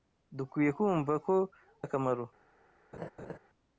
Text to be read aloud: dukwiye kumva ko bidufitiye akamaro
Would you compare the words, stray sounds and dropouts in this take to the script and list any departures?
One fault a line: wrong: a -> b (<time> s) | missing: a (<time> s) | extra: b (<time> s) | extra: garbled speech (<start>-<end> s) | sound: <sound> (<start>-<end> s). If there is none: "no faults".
missing: bidufitiye (1.4 s)
sound: laugh (2.9-3.4 s)